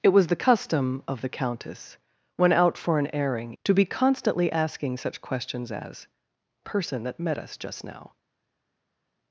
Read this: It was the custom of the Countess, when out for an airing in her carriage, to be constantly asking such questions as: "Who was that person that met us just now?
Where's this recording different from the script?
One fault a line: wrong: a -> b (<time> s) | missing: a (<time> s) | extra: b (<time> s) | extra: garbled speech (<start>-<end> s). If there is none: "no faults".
missing: in her carriage (3.5 s)
missing: Who was that (6.1 s)